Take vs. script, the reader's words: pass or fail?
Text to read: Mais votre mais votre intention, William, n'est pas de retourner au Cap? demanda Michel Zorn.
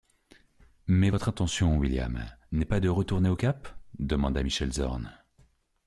fail